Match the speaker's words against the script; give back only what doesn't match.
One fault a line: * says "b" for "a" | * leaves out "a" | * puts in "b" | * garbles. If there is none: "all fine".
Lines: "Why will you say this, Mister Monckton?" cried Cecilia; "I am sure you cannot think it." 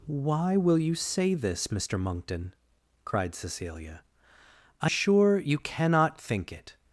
* leaves out "am"